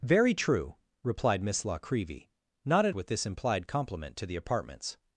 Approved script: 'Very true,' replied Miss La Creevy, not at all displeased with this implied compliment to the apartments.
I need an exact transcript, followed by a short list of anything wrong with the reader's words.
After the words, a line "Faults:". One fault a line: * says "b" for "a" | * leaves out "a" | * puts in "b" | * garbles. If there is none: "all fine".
'Very true,' replied Miss La Creevy, not at with this implied compliment to the apartments.
Faults:
* leaves out "all displeased"